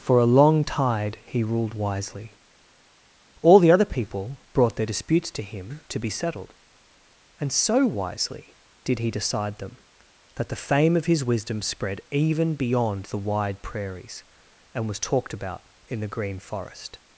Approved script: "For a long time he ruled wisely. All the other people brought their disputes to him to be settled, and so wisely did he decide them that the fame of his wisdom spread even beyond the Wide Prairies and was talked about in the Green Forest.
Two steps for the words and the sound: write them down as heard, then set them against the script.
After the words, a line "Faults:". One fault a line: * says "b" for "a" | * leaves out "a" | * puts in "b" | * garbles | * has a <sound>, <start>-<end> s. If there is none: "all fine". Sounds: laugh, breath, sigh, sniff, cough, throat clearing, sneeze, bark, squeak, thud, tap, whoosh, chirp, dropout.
"For a long tide he ruled wisely. All the other people brought their disputes to him to be settled, and so wisely did he decide them that the fame of his wisdom spread even beyond the Wide Prairies and was talked about in the Green Forest.
Faults:
* says "tide" for "time"